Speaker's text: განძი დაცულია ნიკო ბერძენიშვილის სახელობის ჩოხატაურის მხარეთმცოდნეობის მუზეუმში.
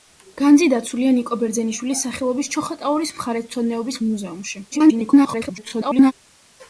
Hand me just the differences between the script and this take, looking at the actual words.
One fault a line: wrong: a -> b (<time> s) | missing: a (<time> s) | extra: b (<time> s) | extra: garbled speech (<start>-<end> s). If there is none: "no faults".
extra: garbled speech (4.7-6.1 s)